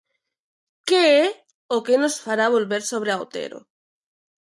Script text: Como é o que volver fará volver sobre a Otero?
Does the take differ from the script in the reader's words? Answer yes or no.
yes